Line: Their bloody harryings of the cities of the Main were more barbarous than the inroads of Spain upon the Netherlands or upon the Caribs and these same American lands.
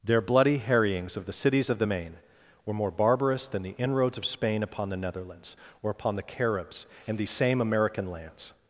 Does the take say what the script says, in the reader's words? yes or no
yes